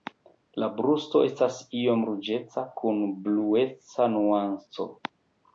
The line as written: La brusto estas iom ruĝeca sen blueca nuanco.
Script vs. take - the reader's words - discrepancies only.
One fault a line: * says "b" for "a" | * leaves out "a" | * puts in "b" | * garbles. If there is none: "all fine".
* says "kun" for "sen"